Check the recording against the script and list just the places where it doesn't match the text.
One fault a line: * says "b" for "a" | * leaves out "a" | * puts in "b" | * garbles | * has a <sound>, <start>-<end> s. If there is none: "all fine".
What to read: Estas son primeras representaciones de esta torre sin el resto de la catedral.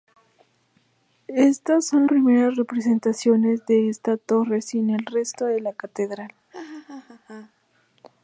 * has a laugh, 6.5-7.5 s